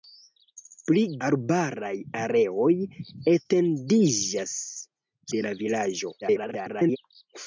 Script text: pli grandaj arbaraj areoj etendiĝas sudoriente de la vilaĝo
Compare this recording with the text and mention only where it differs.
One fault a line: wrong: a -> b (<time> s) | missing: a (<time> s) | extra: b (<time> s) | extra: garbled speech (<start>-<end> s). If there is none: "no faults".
missing: grandaj (1.0 s)
missing: sudoriente (4.5 s)
extra: garbled speech (6.2-7.0 s)